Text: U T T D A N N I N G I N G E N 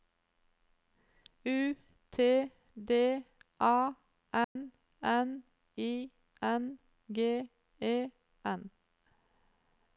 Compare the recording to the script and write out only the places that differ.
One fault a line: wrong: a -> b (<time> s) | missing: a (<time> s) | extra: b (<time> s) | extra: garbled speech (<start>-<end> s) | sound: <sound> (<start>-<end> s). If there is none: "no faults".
missing: T (2.5 s)
sound: dropout (4.4-4.6 s)
missing: I N G (7.5 s)